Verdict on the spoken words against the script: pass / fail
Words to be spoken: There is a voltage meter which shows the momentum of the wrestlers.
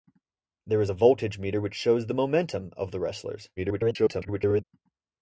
fail